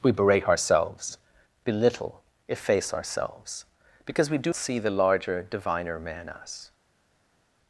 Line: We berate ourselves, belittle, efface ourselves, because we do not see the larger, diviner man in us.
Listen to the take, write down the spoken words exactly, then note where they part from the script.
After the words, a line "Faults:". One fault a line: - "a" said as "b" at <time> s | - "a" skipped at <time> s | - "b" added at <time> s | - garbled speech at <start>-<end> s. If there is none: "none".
We berate ourselves, belittle, efface ourselves, because we do see the larger, diviner man us.
Faults:
- "not" skipped at 4.5 s
- "in" skipped at 6.3 s